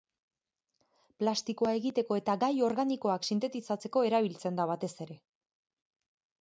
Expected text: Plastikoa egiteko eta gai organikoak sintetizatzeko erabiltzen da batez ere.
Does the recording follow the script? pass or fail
pass